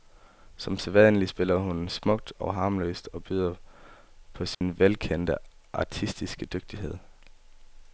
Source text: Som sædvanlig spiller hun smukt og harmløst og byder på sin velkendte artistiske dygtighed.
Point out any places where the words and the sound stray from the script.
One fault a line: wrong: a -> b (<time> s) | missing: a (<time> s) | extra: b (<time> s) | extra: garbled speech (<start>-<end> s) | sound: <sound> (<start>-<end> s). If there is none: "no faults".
sound: dropout (4.5-4.6 s)